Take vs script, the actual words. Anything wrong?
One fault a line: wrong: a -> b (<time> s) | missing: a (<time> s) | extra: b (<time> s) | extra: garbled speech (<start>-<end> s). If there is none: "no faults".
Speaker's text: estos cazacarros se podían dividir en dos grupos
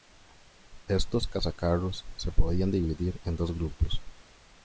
no faults